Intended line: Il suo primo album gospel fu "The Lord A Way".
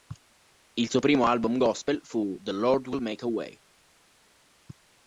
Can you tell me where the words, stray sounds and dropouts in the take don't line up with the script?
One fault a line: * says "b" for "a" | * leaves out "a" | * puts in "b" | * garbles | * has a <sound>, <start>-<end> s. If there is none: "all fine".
* puts in "Will Make"